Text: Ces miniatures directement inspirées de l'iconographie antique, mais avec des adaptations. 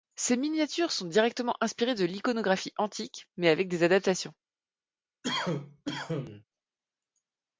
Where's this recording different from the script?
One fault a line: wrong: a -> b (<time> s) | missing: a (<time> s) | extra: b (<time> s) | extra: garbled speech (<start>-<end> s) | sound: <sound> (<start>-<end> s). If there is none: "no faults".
extra: sont (0.9 s)
sound: cough (5.2-6.4 s)